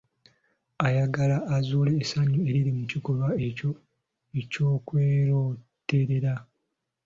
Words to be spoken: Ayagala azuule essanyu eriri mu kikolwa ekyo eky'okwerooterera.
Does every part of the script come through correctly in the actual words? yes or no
yes